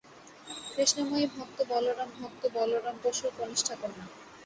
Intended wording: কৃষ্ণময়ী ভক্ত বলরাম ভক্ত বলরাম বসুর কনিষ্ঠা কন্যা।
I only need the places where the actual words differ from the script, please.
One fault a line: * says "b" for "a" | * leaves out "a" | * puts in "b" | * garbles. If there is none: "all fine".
all fine